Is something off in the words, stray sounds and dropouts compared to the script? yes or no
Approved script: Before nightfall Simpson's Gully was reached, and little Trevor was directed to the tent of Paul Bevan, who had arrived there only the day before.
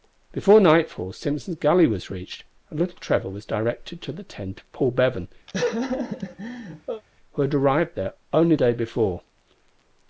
yes